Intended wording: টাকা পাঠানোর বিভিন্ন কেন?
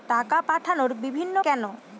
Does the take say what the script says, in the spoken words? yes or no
yes